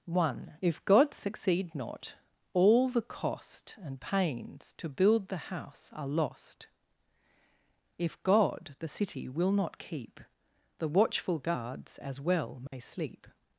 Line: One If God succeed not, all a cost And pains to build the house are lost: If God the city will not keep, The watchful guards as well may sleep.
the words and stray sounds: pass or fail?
fail